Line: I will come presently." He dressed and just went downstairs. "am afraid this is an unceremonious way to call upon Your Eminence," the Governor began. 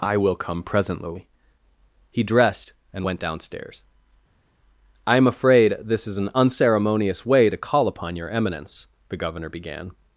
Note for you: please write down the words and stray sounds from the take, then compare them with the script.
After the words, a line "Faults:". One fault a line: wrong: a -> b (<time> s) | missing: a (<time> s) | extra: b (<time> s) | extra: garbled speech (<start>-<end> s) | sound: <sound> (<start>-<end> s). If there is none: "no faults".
I will come presently." He dressed and went downstairs. "I am afraid this is an unceremonious way to call upon Your Eminence," the Governor began.
Faults:
missing: just (3.1 s)
extra: I (5.0 s)